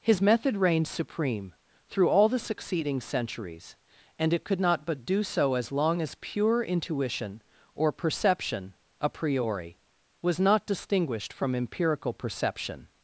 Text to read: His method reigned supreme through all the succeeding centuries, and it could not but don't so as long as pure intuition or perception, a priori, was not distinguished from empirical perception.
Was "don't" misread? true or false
true